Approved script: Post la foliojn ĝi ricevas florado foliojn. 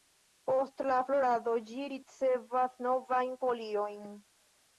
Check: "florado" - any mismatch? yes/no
yes